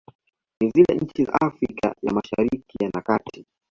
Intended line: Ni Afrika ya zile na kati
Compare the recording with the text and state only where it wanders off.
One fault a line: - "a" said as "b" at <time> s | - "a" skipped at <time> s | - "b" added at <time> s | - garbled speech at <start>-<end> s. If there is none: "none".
- "zile nchi za" added at 0.7 s
- "zile" said as "mashariki" at 2.1 s